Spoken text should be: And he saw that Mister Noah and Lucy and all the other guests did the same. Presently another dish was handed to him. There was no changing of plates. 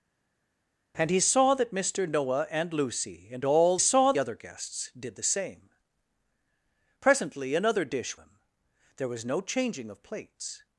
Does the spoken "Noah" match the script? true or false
true